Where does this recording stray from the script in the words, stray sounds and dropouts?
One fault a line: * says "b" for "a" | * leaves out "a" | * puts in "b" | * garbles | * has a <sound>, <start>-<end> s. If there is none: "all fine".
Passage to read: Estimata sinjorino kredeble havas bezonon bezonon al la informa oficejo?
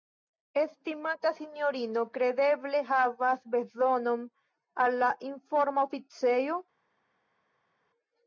* leaves out "bezonon"